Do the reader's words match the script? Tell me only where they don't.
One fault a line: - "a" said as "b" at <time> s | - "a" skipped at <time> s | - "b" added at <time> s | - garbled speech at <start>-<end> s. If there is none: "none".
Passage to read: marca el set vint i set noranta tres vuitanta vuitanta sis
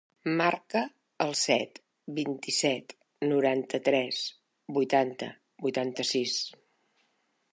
none